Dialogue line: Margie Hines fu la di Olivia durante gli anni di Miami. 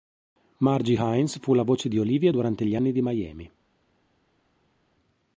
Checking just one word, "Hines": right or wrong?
right